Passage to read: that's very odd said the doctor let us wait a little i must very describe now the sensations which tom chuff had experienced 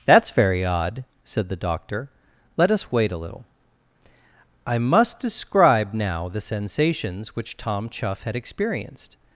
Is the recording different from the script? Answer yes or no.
yes